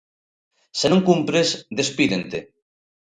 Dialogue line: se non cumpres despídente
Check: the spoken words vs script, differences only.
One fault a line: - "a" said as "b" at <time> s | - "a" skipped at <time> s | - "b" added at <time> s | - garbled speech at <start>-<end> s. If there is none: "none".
none